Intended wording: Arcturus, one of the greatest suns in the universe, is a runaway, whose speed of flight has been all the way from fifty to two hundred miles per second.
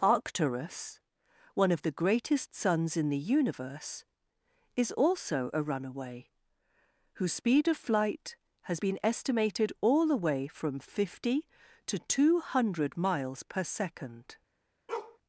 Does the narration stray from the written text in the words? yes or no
yes